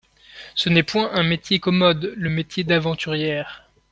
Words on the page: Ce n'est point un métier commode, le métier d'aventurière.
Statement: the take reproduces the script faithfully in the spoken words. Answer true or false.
true